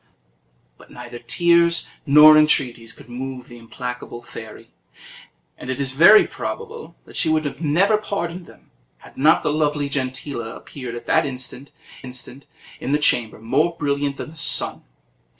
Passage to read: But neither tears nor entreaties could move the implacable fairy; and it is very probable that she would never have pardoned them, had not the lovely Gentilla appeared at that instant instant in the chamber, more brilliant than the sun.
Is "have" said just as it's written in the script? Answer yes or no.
yes